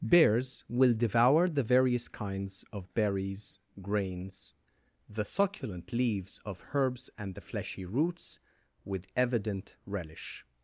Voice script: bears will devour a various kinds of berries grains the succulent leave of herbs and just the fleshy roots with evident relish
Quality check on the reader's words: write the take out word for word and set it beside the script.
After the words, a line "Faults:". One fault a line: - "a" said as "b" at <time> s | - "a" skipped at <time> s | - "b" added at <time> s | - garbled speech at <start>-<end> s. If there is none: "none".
bears will devour the various kinds of berries grains the succulent leaves of herbs and the fleshy roots with evident relish
Faults:
- "a" said as "the" at 1.5 s
- "leave" said as "leaves" at 5.9 s
- "just" skipped at 7.4 s